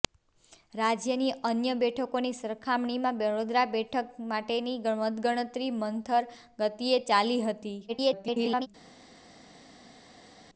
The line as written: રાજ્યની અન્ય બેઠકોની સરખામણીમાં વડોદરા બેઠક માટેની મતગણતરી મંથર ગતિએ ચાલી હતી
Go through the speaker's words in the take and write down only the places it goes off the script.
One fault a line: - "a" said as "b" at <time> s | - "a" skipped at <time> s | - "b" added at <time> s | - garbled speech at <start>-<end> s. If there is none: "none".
- garbled speech at 7.9-8.7 s